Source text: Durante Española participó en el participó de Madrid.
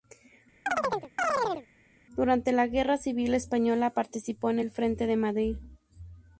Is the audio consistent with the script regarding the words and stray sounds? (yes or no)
no